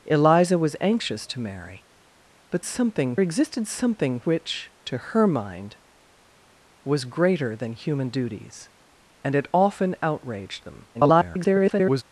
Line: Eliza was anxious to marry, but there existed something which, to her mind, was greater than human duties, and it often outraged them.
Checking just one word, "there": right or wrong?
wrong